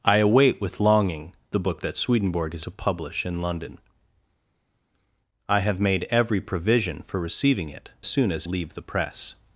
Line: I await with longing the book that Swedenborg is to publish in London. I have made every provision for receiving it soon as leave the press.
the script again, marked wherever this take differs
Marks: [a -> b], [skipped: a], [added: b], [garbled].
I await with longing the book that Swedenborg is to publish in London. I have made every provision for receiving it soon as leave the press.